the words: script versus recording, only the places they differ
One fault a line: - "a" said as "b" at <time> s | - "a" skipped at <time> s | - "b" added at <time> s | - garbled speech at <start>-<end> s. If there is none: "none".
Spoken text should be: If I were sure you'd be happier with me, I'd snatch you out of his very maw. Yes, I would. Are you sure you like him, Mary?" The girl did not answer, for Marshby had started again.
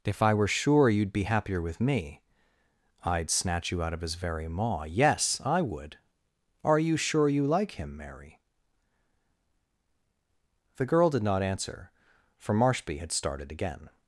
none